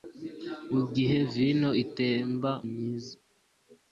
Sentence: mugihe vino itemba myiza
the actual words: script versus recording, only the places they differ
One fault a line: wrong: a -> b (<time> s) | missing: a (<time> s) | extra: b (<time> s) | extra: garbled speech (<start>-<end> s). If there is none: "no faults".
no faults